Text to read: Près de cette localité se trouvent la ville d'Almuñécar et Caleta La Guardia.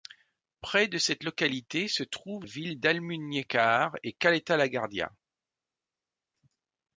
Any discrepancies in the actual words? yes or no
yes